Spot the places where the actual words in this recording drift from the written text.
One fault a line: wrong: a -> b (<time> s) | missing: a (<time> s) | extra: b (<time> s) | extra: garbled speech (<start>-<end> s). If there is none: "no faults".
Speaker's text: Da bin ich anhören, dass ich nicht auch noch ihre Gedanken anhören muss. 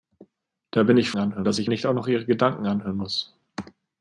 no faults